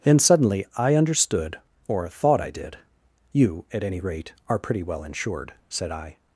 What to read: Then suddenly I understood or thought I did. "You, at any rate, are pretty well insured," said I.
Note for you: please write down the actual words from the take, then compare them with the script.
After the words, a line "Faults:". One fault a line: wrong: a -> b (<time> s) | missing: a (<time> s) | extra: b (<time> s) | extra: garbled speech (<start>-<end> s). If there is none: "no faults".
Then suddenly I understood or thought I did. "You, at any rate, are pretty well insured," said I.
Faults:
no faults